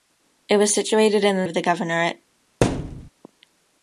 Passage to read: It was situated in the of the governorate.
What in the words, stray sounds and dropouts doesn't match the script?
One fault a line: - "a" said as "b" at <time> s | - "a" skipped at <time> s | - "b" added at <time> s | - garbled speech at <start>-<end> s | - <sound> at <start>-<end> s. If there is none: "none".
- thud at 2.6-3.1 s